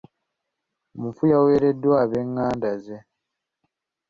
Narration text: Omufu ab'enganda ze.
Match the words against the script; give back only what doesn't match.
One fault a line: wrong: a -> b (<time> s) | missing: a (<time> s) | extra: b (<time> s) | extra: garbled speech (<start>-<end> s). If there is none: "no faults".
extra: yaweereddwa (1.3 s)